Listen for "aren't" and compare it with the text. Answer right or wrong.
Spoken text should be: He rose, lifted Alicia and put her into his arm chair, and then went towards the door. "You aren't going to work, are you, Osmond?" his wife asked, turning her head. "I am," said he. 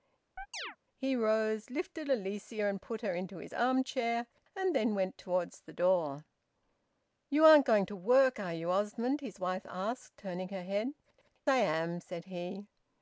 right